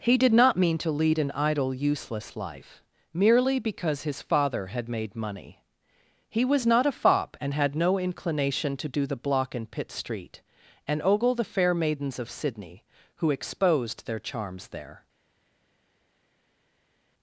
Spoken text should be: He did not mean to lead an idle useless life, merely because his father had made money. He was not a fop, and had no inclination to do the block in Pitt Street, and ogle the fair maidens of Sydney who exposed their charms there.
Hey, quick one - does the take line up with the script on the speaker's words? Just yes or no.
yes